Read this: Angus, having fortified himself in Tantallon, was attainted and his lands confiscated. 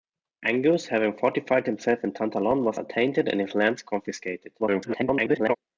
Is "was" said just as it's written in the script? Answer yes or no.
yes